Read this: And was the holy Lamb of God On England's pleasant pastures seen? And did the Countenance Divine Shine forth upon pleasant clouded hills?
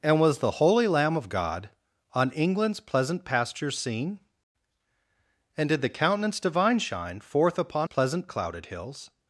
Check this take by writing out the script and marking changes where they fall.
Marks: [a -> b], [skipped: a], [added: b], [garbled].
And was the holy Lamb of God On England's pleasant pastures seen? And did the Countenance Divine Shine forth upon pleasant clouded hills?